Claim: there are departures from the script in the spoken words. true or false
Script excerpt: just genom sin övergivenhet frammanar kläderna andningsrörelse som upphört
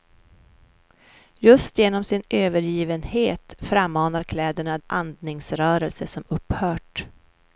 false